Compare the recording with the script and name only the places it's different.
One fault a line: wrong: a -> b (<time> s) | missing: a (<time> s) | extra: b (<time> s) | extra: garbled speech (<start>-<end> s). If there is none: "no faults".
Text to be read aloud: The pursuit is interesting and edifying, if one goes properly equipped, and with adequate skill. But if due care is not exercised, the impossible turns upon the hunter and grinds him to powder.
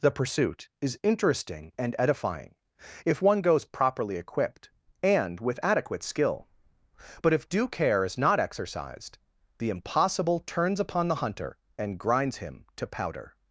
no faults